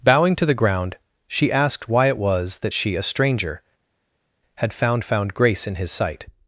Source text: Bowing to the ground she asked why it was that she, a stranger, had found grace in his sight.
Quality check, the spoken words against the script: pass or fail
fail